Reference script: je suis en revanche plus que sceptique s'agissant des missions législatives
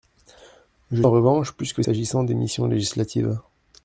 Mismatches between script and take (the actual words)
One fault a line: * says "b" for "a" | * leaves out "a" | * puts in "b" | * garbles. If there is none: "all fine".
* leaves out "suis"
* leaves out "sceptique"